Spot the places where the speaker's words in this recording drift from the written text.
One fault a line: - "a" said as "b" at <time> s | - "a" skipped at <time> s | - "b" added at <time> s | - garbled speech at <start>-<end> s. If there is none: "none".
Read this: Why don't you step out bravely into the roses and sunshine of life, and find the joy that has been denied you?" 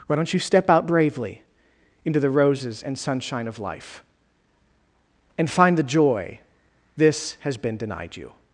- "that" said as "this" at 7.0 s